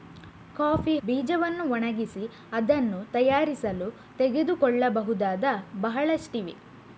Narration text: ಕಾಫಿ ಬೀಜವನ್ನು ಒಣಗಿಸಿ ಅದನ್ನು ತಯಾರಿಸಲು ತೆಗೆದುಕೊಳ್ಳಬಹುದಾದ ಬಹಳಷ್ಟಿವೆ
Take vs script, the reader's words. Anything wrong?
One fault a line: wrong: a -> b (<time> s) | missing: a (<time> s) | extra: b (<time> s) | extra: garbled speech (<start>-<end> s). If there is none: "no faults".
no faults